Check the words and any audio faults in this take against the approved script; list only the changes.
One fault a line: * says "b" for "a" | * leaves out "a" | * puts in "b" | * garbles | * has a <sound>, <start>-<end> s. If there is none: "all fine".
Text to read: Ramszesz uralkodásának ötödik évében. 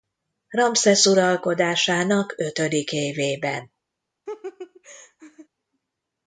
* has a laugh, 4.3-5.5 s